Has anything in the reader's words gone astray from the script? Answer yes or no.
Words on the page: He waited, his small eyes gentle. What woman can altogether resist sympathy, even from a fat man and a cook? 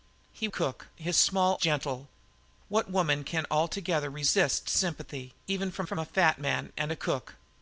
yes